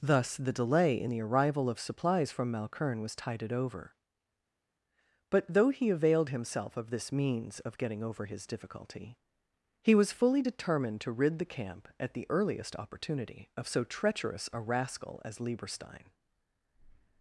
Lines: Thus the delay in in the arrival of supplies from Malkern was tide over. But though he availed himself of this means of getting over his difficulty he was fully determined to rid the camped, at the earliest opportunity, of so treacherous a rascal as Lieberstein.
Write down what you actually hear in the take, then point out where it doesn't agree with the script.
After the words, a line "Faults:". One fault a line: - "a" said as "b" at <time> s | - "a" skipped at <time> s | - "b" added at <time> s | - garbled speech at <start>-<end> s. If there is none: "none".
Thus the delay in the arrival of supplies from Malkern was tided over. But though he availed himself of this means of getting over his difficulty he was fully determined to rid the camp, at the earliest opportunity, of so treacherous a rascal as Lieberstein.
Faults:
- "in" skipped at 1.1 s
- "tide" said as "tided" at 3.2 s
- "camped" said as "camp" at 11.4 s